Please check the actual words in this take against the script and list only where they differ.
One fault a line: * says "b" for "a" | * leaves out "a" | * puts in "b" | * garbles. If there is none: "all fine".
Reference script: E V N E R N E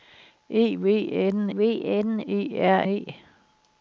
* puts in "V N"
* leaves out "N"